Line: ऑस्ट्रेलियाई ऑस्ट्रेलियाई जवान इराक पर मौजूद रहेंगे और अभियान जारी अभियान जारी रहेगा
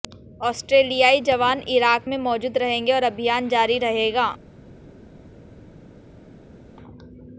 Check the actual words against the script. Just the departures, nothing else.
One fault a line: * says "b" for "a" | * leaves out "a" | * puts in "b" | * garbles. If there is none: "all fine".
* leaves out "ऑस्ट्रेलियाई"
* says "में" for "पर"
* leaves out "अभियान जारी"